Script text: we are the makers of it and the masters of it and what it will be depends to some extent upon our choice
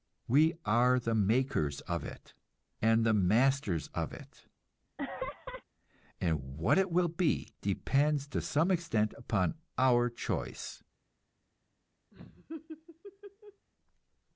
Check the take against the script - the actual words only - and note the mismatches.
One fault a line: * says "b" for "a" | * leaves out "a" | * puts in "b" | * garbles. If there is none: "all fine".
all fine